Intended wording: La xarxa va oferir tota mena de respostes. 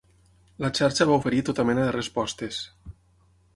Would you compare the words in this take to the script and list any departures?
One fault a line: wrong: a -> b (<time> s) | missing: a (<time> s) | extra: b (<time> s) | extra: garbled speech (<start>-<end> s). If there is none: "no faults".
no faults